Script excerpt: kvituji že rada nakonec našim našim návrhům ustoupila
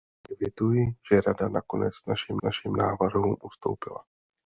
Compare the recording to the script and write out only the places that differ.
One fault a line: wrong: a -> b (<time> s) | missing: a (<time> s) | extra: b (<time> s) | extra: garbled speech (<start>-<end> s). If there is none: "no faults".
no faults